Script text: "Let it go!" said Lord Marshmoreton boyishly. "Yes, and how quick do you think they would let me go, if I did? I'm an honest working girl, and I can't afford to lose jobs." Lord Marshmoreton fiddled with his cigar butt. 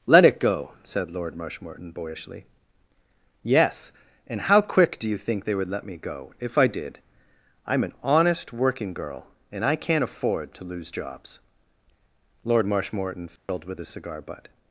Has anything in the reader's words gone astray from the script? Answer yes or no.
no